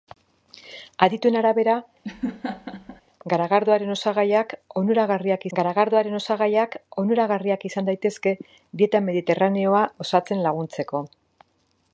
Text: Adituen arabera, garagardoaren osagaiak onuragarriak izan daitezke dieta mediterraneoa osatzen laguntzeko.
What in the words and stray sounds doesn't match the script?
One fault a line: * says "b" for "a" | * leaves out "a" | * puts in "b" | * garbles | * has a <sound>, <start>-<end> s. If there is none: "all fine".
* has a laugh, 2.0-3.0 s
* puts in "garagardoaren osagaiak onuragarriak"